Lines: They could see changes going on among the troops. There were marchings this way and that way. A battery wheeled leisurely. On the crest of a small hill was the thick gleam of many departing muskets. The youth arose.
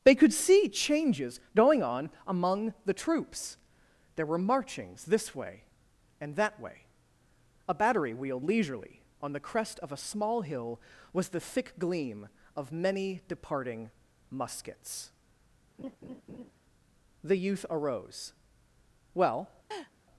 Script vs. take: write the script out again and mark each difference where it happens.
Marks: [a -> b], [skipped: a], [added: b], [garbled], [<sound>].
They could see changes going on among the troops. There were marchings this way and that way. A battery wheeled leisurely. On the crest of a small hill was the thick gleam of many departing muskets. [laugh] The youth arose. [added: Well] [laugh]